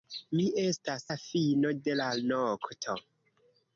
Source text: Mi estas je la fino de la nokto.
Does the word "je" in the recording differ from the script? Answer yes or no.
yes